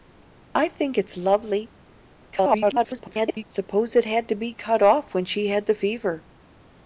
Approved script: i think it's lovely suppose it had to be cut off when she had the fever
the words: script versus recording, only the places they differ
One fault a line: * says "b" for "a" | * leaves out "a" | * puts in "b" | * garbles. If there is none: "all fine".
* garbles